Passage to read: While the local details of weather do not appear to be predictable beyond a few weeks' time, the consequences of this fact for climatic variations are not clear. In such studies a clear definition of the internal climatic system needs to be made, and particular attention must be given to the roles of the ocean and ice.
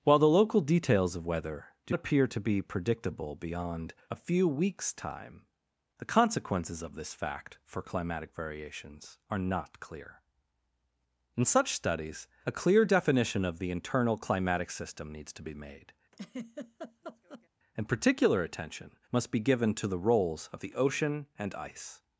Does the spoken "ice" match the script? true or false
true